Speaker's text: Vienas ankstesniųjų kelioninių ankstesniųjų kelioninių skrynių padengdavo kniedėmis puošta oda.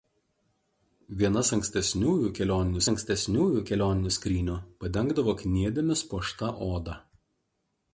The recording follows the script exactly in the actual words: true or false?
true